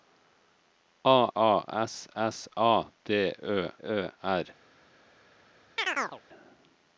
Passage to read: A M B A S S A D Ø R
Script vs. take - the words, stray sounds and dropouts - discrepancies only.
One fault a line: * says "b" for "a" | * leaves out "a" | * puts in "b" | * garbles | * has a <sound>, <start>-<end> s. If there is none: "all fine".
* leaves out "M B"
* puts in "Ø"
* has a chirp, 5.8-6.2 s